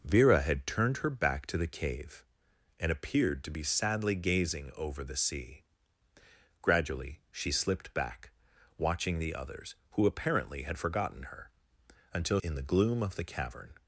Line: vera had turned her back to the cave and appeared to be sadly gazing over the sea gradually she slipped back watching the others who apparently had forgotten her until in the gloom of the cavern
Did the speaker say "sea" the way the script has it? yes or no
yes